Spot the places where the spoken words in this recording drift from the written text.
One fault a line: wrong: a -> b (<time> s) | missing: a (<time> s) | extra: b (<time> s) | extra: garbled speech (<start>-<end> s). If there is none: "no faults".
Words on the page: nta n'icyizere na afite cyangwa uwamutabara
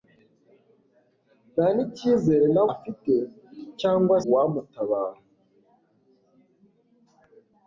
no faults